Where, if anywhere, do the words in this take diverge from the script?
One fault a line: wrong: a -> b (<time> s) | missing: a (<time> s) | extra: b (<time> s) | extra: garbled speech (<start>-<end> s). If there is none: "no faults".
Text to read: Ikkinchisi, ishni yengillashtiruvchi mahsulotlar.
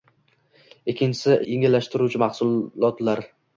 missing: ishni (1.4 s)